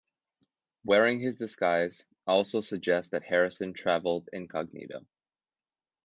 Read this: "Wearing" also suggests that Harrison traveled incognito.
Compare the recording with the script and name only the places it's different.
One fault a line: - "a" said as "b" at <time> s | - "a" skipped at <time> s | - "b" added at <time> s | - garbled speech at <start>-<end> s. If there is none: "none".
- "his disguise" added at 1.2 s